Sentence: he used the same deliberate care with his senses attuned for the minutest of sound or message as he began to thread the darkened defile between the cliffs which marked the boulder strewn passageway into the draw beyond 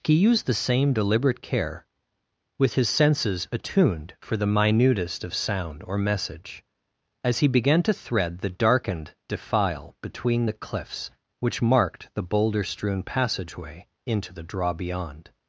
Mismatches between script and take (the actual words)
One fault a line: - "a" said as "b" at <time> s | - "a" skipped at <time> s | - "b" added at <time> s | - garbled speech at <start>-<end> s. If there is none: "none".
none